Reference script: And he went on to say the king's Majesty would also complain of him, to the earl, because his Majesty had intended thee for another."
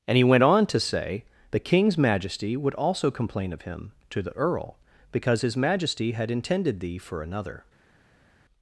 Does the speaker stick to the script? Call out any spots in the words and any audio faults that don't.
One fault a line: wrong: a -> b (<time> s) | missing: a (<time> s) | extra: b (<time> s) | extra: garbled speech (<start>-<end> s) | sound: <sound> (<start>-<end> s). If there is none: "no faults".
no faults